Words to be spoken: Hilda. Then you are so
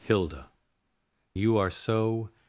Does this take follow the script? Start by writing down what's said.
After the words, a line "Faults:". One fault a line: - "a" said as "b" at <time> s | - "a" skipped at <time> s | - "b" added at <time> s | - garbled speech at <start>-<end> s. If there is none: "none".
Hilda. You are so
Faults:
- "Then" skipped at 0.5 s